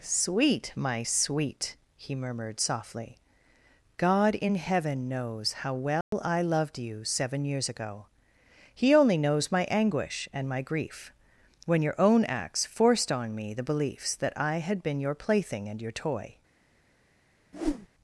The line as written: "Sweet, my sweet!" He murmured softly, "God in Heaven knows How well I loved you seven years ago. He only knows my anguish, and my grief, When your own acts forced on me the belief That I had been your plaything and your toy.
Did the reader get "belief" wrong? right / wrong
wrong